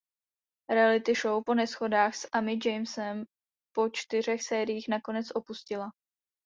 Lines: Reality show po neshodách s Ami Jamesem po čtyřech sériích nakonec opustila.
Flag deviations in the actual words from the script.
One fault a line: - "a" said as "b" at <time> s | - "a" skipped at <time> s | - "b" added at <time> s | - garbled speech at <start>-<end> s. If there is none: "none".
none